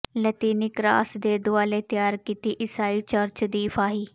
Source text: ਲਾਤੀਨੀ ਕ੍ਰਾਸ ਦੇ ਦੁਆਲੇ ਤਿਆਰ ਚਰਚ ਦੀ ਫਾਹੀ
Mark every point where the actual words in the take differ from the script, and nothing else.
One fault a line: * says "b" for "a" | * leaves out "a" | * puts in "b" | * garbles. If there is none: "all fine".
* puts in "ਕੀਤੀ ਈਸਾਈ"